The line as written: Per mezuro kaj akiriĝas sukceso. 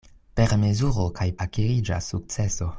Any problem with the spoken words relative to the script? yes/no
no